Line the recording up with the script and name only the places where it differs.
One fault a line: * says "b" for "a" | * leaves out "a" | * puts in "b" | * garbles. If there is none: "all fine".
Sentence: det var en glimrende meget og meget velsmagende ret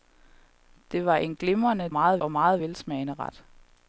all fine